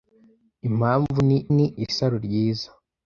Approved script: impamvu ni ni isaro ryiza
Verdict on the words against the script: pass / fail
pass